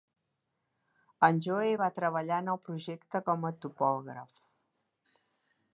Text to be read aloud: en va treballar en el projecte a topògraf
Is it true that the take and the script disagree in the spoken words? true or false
true